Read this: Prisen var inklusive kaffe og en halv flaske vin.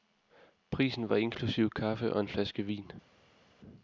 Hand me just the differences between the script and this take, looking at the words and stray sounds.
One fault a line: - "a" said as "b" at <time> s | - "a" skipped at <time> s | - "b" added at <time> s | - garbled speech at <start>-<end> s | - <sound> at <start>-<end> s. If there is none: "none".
- "halv" skipped at 2.3 s